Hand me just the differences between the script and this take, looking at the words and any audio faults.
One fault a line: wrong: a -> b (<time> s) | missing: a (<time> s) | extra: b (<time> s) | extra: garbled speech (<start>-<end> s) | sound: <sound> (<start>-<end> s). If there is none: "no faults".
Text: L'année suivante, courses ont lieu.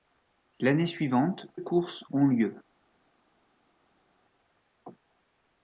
no faults